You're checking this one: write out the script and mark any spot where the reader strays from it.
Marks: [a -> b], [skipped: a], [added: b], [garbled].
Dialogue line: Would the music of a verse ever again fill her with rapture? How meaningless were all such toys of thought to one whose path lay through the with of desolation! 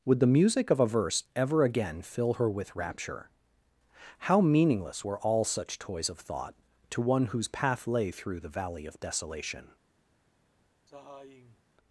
Would the music of a verse ever again fill her with rapture? How meaningless were all such toys of thought to one whose path lay through the [with -> valley] of desolation!